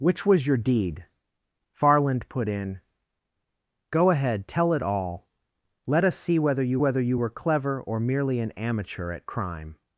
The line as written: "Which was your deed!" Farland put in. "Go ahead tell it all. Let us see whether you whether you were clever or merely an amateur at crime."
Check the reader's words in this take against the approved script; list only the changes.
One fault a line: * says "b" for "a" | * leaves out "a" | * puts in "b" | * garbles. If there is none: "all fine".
all fine